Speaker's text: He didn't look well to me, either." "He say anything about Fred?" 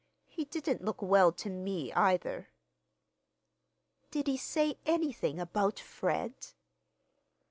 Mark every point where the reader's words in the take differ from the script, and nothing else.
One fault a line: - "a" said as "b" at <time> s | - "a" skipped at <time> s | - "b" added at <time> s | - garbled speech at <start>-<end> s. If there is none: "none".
- "Did" added at 4.1 s